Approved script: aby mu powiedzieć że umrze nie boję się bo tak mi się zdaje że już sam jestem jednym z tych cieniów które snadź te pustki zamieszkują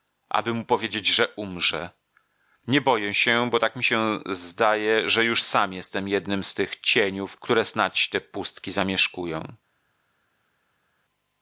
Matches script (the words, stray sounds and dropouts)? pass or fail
pass